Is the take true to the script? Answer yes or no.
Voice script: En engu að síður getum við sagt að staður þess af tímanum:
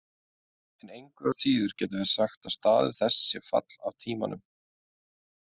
no